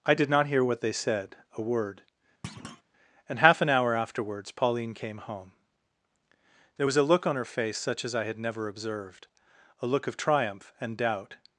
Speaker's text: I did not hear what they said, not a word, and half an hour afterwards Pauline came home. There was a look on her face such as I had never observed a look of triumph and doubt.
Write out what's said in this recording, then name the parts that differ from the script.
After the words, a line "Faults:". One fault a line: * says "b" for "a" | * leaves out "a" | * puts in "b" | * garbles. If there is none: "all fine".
I did not hear what they said, a word, and half an hour afterwards Pauline came home. There was a look on her face such as I had never observed a look of triumph and doubt.
Faults:
* leaves out "not"